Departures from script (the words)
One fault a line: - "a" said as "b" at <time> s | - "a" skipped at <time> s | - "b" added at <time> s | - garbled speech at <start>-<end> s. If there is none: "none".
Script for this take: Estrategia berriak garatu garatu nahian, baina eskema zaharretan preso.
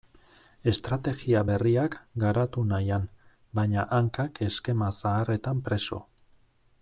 - "garatu" skipped at 2.6 s
- "hankak" added at 4.0 s